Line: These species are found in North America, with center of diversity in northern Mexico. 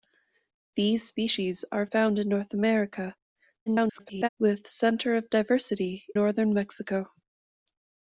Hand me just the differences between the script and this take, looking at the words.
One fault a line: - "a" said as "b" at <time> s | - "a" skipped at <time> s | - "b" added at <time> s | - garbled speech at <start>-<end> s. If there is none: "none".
- garbled speech at 3.7-4.3 s
- "in" skipped at 6.0 s